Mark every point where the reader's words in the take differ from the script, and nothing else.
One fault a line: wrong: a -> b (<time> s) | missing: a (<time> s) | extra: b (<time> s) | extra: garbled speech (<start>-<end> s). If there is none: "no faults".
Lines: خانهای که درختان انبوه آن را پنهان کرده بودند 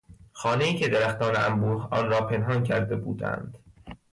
no faults